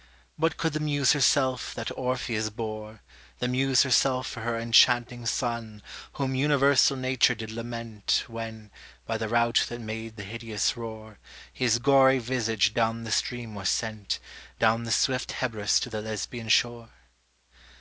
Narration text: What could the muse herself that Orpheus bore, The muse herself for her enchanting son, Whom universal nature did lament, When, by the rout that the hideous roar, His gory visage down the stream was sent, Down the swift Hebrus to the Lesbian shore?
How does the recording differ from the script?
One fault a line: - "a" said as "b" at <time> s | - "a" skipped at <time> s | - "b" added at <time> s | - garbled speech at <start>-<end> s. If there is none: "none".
- "made" added at 9.8 s